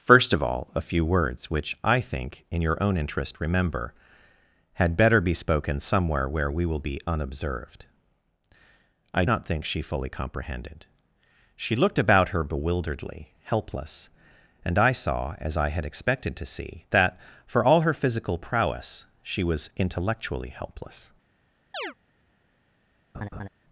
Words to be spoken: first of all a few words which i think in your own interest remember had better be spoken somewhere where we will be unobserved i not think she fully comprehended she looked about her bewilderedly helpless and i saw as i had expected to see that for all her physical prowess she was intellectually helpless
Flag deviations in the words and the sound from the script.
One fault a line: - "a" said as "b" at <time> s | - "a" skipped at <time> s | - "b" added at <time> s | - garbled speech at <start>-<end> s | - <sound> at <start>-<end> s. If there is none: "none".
- chirp at 21.7-21.9 s
- laugh at 23.1-23.5 s